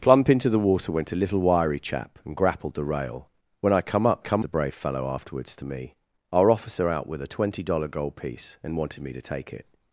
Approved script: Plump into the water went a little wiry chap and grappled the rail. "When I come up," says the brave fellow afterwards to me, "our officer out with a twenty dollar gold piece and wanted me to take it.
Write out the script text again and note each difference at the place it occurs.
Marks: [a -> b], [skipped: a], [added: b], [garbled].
Plump into the water went a little wiry chap and grappled the rail. "When I come up," [says -> come] the brave fellow afterwards to me, "our officer out with a twenty dollar gold piece and wanted me to take it.